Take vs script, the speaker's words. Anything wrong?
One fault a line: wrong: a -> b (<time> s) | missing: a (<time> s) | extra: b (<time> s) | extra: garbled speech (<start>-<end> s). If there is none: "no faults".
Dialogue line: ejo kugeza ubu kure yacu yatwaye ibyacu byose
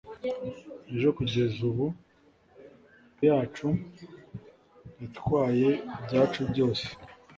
missing: kure (1.8 s)